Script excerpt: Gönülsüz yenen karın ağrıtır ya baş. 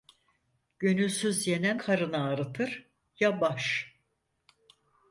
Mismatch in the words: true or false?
false